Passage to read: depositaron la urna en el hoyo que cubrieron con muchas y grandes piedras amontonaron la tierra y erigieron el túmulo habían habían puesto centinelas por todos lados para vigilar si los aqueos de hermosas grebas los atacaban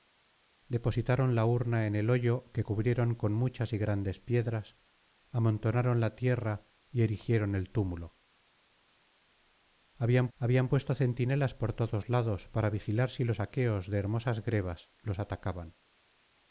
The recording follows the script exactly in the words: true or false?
true